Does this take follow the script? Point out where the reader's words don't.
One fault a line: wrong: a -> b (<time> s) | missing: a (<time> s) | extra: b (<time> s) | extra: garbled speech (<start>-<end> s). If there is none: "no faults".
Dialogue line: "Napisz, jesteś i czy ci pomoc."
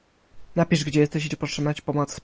extra: gdzie (0.8 s)
extra: potrzebna (1.4 s)